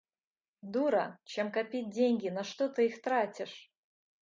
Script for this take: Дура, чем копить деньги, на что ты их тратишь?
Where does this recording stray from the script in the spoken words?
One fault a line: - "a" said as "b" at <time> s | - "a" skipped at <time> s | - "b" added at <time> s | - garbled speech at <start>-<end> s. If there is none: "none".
none